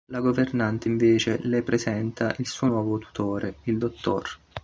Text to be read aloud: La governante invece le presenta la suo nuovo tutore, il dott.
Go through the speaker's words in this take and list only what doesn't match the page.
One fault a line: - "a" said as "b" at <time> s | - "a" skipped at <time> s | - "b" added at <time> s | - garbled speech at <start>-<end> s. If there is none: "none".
- "la" said as "il" at 2.4 s